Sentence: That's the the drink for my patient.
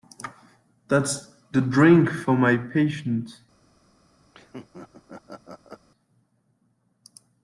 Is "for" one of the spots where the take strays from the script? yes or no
no